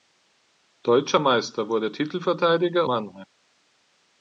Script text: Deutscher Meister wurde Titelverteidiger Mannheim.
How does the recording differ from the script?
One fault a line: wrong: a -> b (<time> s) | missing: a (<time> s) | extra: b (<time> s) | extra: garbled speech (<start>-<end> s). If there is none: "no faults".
no faults